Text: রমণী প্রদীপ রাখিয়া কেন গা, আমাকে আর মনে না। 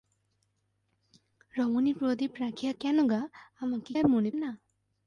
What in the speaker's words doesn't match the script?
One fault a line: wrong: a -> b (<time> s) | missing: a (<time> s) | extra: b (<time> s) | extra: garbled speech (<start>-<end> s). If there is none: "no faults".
no faults